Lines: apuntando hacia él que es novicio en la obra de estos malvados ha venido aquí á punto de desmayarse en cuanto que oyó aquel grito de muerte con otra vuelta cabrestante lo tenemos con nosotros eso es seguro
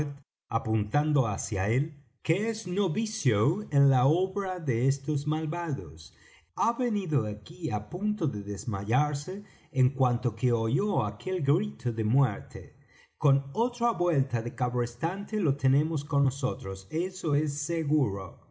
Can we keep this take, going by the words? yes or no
no